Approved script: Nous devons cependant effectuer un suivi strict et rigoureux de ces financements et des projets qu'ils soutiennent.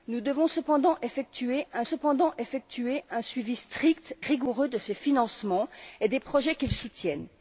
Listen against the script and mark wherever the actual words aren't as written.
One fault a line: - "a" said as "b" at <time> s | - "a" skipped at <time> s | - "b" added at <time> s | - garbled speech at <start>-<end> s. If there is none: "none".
- "cependant effectuer un" added at 1.8 s
- "et" skipped at 4.2 s